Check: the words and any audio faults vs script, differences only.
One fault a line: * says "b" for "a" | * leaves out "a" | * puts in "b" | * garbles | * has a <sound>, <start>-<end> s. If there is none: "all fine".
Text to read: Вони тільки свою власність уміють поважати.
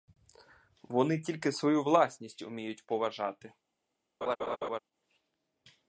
* has a laugh, 4.2-4.8 s